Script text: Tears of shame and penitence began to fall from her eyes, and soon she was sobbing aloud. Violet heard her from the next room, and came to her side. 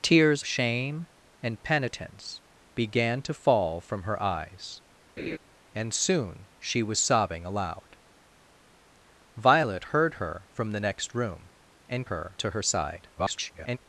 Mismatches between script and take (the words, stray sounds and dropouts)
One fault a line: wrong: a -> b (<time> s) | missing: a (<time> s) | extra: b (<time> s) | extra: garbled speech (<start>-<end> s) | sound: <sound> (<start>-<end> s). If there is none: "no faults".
missing: of (0.4 s)
sound: laugh (5.2-5.4 s)
wrong: came -> her (12.0 s)
extra: garbled speech (13.2-13.8 s)